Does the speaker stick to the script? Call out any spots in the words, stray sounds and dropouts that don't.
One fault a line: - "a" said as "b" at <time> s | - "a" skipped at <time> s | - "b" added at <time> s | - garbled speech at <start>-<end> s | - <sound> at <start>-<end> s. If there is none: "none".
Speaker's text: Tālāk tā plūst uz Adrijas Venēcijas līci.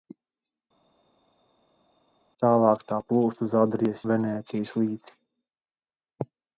none